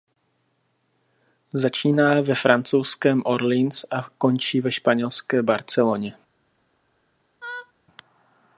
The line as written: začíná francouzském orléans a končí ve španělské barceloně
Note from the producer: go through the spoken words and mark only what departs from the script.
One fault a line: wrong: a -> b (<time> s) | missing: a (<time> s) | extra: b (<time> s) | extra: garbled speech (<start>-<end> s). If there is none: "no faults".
extra: ve (2.2 s)